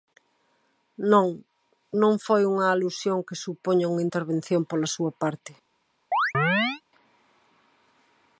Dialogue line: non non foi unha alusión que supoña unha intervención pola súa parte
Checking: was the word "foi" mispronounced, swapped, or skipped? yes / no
no